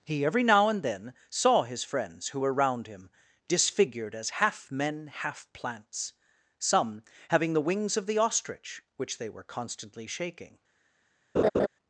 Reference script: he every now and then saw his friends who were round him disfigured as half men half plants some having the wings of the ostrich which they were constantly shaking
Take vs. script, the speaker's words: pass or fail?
pass